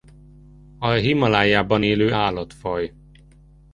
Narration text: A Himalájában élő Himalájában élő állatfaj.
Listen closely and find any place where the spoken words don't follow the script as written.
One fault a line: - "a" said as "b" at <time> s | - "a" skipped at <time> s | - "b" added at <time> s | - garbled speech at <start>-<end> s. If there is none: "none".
- "Himalájában élő" skipped at 2.1 s